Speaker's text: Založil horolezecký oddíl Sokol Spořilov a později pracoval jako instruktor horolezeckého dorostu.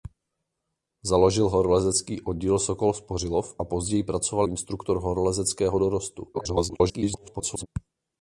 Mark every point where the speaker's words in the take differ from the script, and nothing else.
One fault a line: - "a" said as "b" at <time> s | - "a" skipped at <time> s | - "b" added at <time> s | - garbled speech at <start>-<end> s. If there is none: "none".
- "jako" skipped at 4.5 s
- garbled speech at 6.3-7.7 s